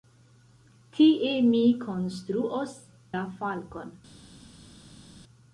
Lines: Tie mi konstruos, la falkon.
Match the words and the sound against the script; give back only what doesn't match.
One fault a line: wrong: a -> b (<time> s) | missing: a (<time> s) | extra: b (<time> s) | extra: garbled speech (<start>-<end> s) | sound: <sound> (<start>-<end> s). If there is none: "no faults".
no faults